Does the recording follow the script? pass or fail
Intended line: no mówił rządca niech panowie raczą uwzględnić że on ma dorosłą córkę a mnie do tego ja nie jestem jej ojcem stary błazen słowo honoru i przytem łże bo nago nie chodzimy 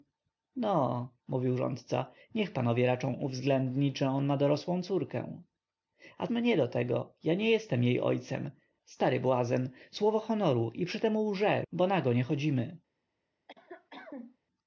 pass